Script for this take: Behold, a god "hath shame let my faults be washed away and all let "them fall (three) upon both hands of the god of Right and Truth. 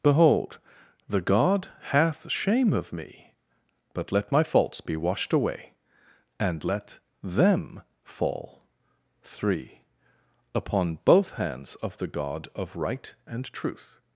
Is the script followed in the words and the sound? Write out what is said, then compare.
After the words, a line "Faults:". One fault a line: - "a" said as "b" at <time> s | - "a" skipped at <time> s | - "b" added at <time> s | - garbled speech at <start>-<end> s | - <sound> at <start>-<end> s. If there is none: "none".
Behold, the god "hath shame of me, but let my faults be washed away and let "them fall (three) upon both hands of the god of Right and Truth.
Faults:
- "a" said as "the" at 1.1 s
- "of me but" added at 2.7 s
- "all" skipped at 6.6 s